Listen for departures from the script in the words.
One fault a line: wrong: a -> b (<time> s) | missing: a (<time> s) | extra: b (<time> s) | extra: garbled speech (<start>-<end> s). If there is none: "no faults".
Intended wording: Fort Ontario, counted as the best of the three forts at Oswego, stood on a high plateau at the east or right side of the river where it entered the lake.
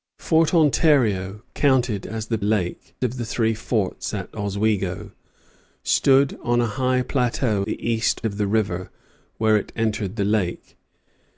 wrong: best -> lake (2.4 s)
missing: at (7.7 s)
missing: or right side (8.2 s)